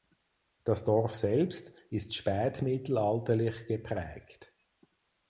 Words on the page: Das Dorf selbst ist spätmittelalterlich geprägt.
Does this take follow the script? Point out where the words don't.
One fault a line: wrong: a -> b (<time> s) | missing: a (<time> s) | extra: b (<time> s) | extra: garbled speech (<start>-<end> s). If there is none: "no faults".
no faults